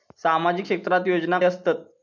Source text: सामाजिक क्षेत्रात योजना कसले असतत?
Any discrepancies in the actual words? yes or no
yes